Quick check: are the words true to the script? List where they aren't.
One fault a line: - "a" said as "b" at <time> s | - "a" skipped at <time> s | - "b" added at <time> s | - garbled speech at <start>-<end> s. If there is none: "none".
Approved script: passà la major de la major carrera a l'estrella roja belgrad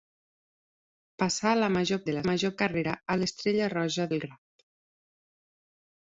none